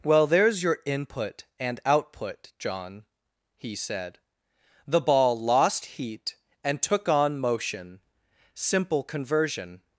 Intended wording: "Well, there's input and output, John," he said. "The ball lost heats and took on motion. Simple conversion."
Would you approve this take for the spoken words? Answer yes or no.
no